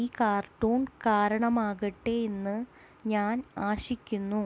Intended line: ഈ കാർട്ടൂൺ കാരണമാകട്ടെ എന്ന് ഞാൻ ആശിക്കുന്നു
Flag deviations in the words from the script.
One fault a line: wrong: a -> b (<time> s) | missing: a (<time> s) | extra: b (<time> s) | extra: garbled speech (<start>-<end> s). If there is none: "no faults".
no faults